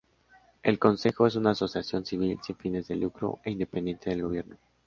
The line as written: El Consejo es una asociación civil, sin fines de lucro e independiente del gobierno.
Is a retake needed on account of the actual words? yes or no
no